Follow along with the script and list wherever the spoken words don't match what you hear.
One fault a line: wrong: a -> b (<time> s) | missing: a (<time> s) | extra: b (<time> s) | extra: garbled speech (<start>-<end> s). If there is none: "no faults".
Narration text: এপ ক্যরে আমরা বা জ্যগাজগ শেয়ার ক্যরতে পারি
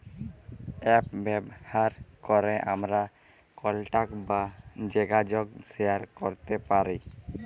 extra: ব্যাভার (1.2 s)
extra: কলটাক (3.6 s)